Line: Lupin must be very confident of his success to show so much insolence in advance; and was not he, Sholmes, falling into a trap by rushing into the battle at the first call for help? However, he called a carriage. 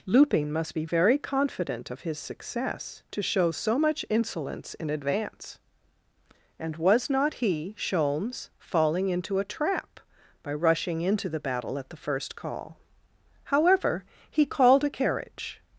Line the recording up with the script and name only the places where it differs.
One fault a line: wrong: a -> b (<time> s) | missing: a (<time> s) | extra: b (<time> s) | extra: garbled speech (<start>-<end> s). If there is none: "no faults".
missing: for help (12.8 s)